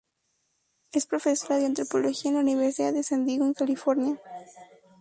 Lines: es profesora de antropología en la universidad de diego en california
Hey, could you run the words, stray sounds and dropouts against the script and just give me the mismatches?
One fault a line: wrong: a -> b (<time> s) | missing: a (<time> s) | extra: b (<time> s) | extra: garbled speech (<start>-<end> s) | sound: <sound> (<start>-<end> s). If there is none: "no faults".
extra: san (3.0 s)